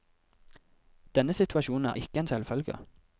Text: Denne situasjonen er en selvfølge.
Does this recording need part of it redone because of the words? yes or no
yes